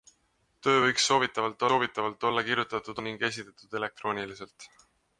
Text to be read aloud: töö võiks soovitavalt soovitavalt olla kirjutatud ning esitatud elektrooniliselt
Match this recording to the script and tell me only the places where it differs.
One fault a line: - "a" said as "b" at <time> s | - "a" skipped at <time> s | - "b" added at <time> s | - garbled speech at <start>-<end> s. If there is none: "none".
none